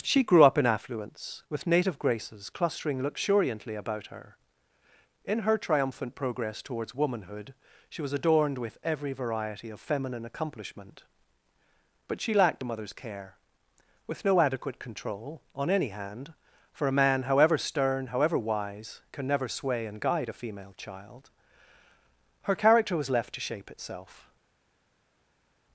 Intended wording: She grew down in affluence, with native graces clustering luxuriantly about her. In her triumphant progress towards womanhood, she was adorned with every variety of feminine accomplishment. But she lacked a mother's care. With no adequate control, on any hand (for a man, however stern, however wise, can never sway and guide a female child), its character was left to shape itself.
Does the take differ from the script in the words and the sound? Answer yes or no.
yes